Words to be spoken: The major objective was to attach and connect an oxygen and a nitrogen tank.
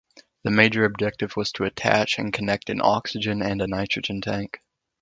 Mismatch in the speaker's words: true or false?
false